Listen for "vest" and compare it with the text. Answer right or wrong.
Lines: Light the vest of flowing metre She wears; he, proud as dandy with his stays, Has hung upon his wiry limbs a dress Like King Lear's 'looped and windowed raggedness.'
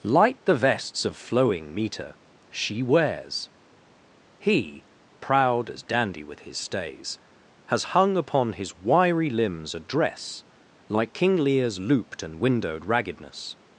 wrong